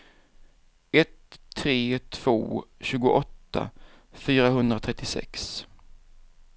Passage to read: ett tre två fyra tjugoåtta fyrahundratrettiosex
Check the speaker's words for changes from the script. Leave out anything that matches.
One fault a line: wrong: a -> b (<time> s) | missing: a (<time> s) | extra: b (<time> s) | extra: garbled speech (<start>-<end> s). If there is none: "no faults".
missing: fyra (2.6 s)